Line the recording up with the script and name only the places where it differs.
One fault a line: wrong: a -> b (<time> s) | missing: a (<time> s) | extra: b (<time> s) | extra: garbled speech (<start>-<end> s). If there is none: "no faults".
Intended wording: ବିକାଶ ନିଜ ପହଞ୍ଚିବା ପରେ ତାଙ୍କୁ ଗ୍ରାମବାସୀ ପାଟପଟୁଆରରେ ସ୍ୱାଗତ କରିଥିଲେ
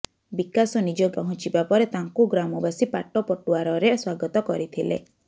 no faults